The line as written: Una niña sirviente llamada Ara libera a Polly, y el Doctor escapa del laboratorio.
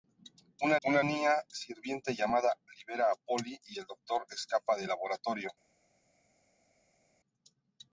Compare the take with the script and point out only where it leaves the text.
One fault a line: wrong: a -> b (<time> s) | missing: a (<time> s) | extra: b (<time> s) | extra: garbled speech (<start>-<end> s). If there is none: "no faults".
extra: una (0.9 s)
missing: Ara (2.6 s)